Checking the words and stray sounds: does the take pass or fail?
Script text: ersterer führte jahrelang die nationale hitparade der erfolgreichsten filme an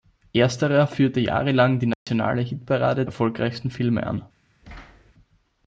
fail